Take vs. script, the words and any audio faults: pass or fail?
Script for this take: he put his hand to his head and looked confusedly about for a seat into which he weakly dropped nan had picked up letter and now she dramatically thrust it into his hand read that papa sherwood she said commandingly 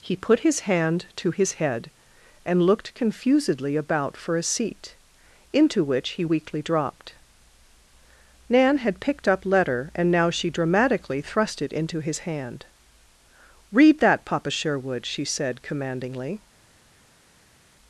pass